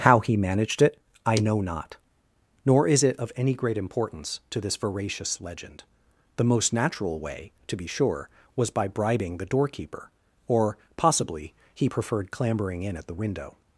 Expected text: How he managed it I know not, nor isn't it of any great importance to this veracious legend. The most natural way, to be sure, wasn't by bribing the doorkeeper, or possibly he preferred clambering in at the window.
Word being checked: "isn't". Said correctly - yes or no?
no